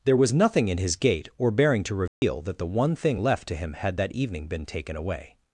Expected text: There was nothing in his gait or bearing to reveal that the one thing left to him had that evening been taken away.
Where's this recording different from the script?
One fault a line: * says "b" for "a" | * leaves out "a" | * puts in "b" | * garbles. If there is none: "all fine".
all fine